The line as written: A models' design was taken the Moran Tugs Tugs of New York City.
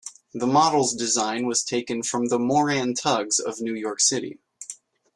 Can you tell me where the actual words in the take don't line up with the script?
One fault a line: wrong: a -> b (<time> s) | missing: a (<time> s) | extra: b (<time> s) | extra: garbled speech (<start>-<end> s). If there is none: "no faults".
wrong: A -> The (0.3 s)
extra: from (2.0 s)
missing: Tugs (3.4 s)